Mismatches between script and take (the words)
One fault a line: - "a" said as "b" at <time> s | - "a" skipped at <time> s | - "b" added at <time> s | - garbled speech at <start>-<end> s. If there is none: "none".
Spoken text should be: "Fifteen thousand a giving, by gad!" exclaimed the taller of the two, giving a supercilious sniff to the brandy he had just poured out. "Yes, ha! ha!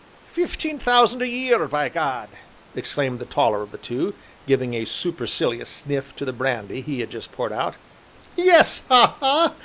- "giving" said as "year" at 1.3 s